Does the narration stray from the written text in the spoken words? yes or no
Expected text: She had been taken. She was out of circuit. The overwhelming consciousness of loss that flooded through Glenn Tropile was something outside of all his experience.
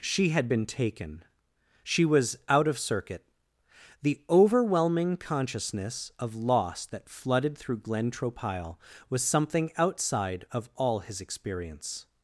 no